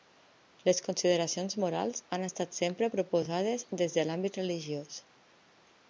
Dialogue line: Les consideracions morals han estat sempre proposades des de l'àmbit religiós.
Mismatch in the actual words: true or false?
false